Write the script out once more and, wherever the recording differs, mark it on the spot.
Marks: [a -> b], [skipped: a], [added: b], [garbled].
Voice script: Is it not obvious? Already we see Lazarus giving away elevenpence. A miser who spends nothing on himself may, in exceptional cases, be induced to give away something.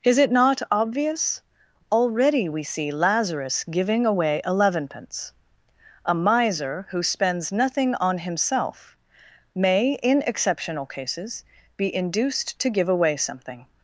Is it not obvious? Already we see Lazarus giving away elevenpence. A miser who spends nothing on himself may, in exceptional cases, be induced to give away something.